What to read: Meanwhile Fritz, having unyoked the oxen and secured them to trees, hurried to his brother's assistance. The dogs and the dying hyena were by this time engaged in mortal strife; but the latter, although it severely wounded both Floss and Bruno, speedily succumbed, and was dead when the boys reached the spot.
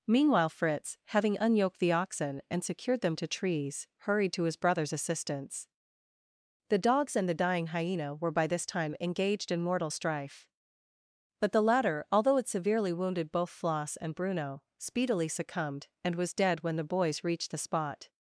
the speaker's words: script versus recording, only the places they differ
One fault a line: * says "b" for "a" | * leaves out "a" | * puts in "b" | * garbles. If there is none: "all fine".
all fine